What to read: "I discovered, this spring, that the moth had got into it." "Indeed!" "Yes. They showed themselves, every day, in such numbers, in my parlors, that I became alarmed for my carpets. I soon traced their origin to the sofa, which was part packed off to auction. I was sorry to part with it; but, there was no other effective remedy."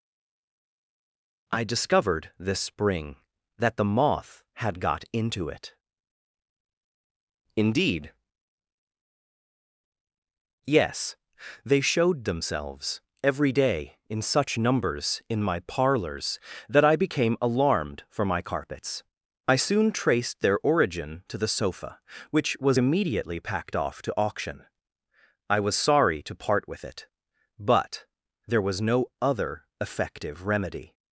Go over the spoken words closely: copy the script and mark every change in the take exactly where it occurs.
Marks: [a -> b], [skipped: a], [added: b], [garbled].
"I discovered, this spring, that the moth had got into it." "Indeed!" "Yes. They showed themselves, every day, in such numbers, in my parlors, that I became alarmed for my carpets. I soon traced their origin to the sofa, which was [part -> immediately] packed off to auction. I was sorry to part with it; but, there was no other effective remedy."